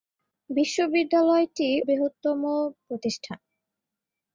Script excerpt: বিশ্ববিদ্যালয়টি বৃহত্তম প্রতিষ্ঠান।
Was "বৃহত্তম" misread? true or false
false